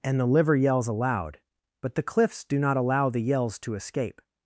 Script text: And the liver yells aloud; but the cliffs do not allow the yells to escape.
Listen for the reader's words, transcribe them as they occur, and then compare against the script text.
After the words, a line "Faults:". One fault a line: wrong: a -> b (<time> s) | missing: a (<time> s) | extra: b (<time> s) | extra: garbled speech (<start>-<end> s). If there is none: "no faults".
And the liver yells aloud; but the cliffs do not allow the yells to escape.
Faults:
no faults